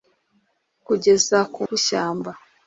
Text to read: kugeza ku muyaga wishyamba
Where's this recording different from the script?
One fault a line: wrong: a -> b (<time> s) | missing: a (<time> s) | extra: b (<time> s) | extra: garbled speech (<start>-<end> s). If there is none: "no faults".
missing: muyaga (1.6 s)